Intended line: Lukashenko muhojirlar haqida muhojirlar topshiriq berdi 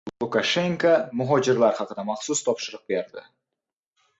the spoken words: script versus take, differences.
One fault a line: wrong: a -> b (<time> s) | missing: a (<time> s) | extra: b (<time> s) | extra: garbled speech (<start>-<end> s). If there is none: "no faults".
wrong: muhojirlar -> maxsus (2.1 s)